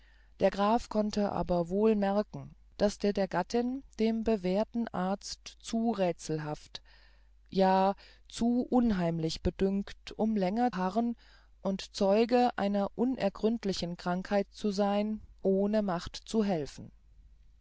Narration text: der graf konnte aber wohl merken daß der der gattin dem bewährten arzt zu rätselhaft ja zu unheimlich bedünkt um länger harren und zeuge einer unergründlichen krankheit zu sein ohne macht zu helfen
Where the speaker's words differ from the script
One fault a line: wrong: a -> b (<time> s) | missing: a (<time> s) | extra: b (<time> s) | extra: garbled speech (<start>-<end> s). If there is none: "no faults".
no faults